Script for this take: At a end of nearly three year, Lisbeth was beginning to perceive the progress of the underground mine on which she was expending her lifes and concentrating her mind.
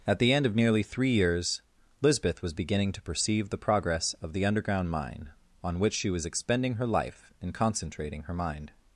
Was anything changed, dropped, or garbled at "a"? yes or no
yes